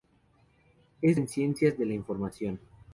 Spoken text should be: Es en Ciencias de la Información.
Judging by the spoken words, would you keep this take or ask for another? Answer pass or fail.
pass